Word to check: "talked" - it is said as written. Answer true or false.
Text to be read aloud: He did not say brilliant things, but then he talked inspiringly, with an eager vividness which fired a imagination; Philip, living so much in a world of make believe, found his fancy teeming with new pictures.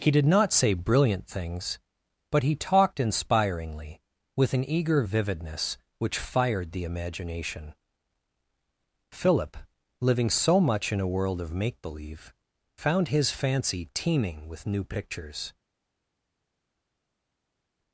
true